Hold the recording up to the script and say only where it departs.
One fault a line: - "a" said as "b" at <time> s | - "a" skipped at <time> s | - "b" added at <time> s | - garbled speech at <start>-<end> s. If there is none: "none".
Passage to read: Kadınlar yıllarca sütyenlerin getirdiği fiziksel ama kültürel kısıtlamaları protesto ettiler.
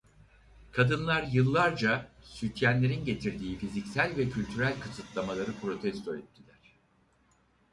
- "ama" said as "ve" at 4.2 s